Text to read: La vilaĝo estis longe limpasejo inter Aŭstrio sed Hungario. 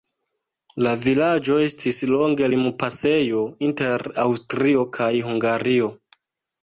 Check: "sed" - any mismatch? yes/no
yes